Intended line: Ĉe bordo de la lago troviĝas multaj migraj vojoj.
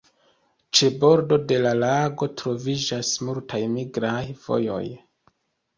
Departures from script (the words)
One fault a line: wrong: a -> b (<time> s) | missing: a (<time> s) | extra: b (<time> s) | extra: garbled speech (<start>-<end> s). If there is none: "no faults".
no faults